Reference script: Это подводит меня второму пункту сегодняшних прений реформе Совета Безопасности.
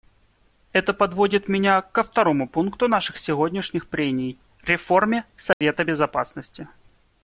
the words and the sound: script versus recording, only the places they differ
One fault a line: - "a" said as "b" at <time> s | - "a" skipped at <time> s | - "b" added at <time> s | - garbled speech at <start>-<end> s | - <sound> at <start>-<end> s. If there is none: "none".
- "ко" added at 1.8 s
- "наших" added at 2.9 s
- dropout at 5.5-5.6 s